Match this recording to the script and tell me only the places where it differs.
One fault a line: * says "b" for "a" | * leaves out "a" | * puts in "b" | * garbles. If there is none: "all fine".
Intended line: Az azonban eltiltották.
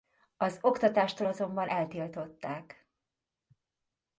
* puts in "oktatástól"